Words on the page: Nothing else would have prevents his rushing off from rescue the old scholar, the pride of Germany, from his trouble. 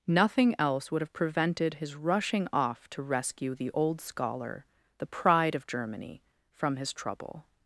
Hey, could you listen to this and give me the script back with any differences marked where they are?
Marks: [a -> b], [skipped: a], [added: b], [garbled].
Nothing else would have [prevents -> prevented] his rushing off [from -> to] rescue the old scholar, the pride of Germany, from his trouble.